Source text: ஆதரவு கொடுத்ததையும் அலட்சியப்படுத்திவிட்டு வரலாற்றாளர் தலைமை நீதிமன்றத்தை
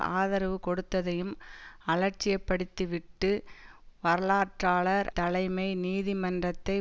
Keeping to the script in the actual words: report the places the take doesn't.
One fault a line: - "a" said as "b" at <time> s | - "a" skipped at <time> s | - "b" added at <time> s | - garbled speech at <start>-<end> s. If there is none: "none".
none